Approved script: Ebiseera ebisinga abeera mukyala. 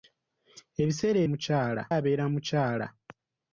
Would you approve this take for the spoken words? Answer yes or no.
no